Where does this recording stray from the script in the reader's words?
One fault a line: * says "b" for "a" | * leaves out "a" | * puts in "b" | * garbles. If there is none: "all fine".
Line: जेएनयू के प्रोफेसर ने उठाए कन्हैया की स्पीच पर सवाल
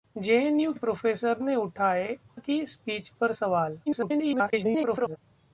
* leaves out "के"
* leaves out "कन्हैया"
* garbles